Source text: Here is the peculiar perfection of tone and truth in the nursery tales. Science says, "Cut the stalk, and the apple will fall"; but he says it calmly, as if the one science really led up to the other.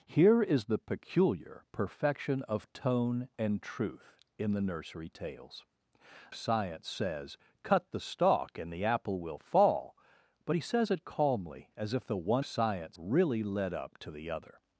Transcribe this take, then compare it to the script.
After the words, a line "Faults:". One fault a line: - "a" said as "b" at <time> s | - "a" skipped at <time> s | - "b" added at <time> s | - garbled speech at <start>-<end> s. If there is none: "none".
Here is the peculiar perfection of tone and truth in the nursery tales. Science says, "Cut the stalk, and the apple will fall"; but he says it calmly, as if the one science really led up to the other.
Faults:
none